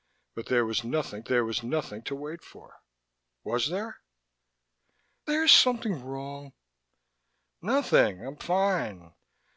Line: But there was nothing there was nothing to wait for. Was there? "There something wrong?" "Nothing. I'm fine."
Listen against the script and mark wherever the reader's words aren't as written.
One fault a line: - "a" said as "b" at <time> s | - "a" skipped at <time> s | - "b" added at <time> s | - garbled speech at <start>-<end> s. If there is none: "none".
none